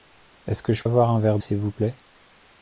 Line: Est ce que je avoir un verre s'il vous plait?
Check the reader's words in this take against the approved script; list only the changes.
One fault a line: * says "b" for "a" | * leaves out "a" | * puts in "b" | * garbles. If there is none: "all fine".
all fine